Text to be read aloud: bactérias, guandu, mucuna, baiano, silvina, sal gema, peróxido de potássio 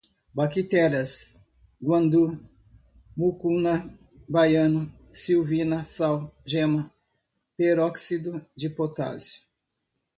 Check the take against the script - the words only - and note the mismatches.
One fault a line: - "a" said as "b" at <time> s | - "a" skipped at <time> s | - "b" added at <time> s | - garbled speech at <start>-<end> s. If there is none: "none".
none